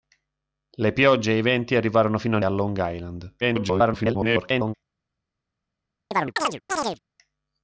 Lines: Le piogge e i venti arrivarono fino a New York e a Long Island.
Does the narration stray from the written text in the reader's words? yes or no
yes